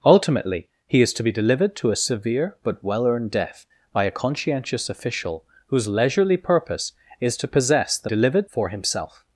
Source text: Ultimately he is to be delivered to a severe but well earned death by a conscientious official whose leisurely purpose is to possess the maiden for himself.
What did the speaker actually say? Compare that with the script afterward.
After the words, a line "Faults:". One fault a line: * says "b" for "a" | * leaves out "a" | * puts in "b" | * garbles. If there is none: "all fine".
Ultimately he is to be delivered to a severe but well earned death by a conscientious official whose leisurely purpose is to possess the delivered for himself.
Faults:
* says "delivered" for "maiden"